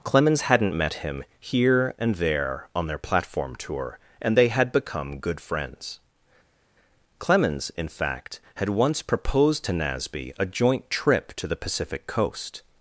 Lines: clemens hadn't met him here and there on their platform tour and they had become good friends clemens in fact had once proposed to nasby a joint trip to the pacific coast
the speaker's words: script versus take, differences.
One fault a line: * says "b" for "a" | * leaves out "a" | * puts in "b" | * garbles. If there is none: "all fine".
all fine